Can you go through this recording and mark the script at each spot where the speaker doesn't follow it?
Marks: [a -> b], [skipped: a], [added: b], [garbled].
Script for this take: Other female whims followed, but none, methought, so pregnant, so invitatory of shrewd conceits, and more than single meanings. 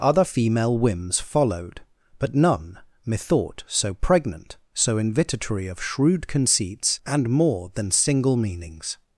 Other female whims followed, but none, methought, so pregnant, so invitatory of shrewd conceits, and more than single meanings.